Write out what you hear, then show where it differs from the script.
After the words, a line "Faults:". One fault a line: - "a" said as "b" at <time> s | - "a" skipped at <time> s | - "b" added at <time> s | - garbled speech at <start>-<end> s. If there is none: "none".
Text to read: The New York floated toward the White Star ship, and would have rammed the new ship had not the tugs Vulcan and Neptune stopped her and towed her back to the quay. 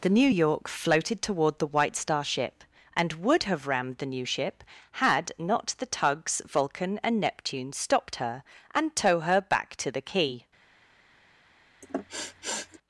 The New York floated toward the White Star ship, and would have rammed the new ship had not the tugs Vulcan and Neptune stopped her and tow her back to the quay.
Faults:
- "towed" said as "tow" at 9.0 s